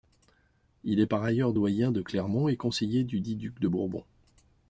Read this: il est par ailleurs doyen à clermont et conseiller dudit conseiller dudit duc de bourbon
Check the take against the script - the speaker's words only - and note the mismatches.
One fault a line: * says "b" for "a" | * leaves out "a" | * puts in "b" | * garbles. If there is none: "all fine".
* says "de" for "à"
* leaves out "conseiller dudit"